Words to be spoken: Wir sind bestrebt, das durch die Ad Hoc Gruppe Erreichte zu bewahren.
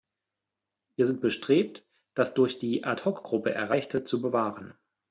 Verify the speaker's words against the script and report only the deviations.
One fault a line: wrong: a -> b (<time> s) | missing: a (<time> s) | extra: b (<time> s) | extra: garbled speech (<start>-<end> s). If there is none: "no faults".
no faults